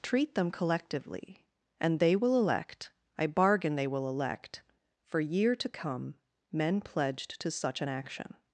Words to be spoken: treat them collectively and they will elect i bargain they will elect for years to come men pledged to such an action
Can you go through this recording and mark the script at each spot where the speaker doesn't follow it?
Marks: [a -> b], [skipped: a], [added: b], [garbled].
treat them collectively and they will elect i bargain they will elect for [years -> year] to come men pledged to such an action